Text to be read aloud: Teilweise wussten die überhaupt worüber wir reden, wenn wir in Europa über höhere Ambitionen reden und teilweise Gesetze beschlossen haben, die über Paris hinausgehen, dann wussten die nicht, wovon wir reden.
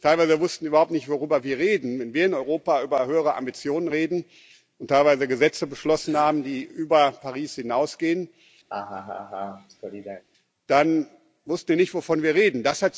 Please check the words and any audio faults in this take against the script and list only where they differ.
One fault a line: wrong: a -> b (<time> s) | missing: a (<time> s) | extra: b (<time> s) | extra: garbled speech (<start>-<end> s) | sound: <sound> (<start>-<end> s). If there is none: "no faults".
extra: nicht (0.9 s)
sound: laugh (8.7-10.2 s)